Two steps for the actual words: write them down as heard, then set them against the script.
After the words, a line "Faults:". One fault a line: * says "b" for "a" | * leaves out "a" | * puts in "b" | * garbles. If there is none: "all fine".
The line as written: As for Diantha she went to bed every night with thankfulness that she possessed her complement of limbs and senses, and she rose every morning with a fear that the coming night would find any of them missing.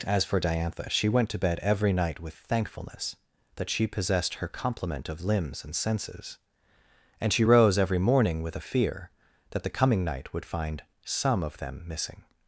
As for Diantha she went to bed every night with thankfulness that she possessed her complement of limbs and senses, and she rose every morning with a fear that the coming night would find some of them missing.
Faults:
* says "some" for "any"